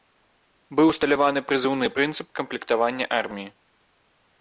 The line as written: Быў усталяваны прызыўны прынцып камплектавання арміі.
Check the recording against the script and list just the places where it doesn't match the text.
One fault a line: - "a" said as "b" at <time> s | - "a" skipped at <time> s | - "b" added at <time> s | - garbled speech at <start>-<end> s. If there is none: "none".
none